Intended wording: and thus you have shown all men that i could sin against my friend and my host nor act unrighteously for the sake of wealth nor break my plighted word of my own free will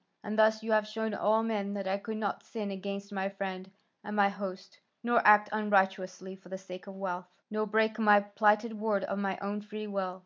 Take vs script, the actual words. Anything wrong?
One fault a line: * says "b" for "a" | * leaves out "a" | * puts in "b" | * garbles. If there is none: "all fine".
* puts in "not"